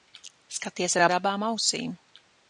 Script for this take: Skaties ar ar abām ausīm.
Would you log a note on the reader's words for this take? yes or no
no